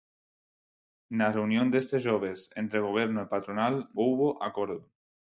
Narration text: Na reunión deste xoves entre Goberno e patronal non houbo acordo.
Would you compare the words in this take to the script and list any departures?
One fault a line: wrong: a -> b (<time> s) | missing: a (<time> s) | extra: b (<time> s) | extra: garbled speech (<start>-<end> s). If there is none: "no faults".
missing: non (3.7 s)